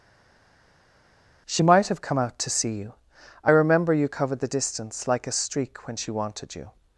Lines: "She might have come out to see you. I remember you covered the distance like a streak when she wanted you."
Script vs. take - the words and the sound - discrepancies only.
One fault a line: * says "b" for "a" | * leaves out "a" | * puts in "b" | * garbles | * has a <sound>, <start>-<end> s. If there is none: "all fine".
all fine